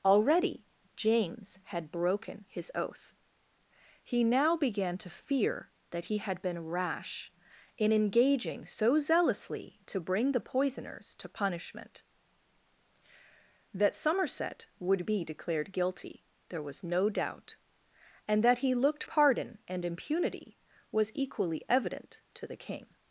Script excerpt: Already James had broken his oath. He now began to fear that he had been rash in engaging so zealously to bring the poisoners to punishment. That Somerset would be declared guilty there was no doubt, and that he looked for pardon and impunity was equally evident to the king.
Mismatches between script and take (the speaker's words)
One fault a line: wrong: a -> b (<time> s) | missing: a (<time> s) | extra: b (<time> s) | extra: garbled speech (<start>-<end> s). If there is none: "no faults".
missing: for (19.0 s)